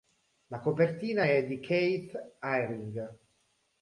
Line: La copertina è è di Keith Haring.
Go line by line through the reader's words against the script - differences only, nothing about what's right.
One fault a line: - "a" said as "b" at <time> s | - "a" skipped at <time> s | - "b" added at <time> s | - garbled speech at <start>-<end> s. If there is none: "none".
- "è" skipped at 1.4 s